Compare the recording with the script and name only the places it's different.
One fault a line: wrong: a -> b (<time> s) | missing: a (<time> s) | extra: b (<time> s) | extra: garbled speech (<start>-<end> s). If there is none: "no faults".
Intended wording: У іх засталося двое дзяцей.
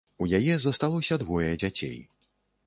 wrong: іх -> яе (0.4 s)